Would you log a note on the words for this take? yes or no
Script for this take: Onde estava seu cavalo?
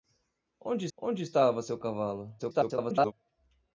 yes